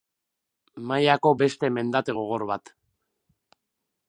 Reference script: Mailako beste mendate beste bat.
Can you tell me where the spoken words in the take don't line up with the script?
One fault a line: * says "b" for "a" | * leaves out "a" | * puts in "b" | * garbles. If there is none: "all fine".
* says "gogor" for "beste"